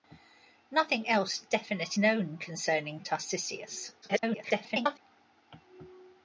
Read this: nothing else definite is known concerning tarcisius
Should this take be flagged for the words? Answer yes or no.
yes